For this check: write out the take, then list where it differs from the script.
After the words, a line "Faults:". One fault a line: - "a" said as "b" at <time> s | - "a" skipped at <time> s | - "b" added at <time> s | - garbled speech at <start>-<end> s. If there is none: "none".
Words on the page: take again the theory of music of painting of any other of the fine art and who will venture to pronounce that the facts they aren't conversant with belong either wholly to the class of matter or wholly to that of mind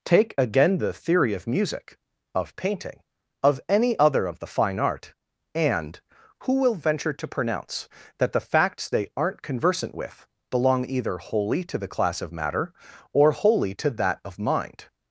take again the theory of music of painting of any other of the fine art and who will venture to pronounce that the facts they aren't conversant with belong either wholly to the class of matter or wholly to that of mind
Faults:
none